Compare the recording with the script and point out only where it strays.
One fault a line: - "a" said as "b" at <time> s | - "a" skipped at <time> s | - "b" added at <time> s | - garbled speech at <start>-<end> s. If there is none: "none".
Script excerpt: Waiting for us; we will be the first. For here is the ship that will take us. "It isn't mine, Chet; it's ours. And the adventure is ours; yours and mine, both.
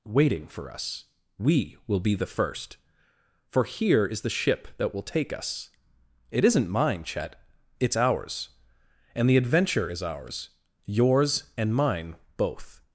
none